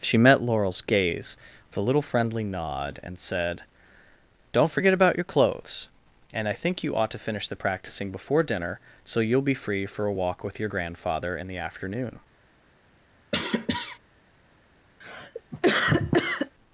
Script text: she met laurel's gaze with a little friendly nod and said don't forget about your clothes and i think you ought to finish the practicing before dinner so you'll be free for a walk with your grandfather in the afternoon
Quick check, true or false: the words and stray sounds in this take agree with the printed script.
false